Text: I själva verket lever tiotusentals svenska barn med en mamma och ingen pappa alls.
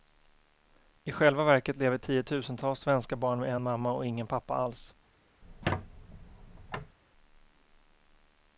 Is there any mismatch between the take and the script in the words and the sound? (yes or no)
yes